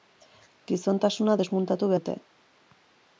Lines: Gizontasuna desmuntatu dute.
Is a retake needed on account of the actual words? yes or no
no